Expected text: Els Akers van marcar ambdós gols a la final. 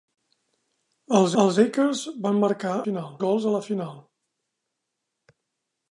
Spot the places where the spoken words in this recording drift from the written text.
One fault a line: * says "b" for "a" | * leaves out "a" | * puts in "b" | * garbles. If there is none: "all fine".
* puts in "els"
* says "final" for "ambdós"